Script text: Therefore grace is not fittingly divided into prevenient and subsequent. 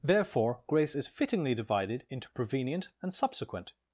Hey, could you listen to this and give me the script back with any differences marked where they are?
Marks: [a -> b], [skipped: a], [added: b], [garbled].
Therefore grace is [skipped: not] fittingly divided into prevenient and subsequent.